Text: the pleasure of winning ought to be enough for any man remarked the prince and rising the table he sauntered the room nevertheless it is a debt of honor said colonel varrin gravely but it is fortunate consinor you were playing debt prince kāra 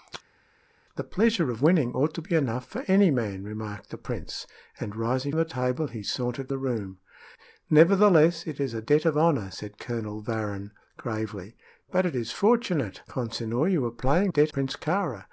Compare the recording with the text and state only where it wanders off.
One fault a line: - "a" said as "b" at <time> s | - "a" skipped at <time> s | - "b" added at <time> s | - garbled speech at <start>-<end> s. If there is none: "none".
none